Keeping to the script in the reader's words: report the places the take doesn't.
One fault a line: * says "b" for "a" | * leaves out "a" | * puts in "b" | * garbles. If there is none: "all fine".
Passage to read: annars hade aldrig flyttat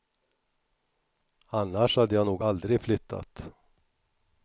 * puts in "jag nog"